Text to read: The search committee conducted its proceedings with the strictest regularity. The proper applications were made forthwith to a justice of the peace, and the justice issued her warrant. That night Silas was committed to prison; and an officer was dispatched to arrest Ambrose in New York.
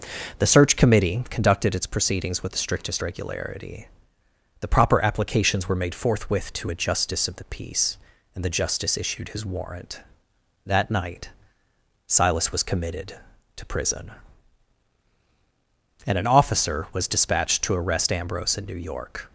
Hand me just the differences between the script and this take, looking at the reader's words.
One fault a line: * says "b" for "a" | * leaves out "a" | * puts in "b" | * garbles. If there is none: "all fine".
* says "his" for "her"